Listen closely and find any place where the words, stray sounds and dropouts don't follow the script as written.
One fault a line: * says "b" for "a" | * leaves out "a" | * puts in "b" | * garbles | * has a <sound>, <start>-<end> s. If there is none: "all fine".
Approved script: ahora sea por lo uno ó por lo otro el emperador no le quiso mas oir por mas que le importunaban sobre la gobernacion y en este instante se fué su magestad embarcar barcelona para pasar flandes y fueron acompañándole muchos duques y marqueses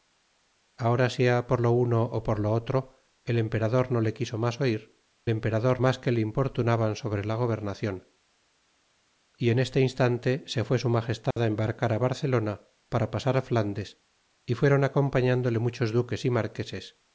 * says "emperador" for "por"
* has a dropout, 11.3-11.4 s